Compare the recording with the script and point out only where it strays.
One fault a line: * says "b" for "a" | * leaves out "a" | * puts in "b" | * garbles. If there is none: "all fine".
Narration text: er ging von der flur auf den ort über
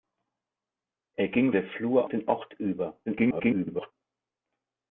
* leaves out "von"
* leaves out "auf"
* garbles